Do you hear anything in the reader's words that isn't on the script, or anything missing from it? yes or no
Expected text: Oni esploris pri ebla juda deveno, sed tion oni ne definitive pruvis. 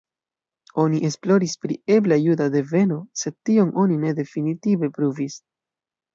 no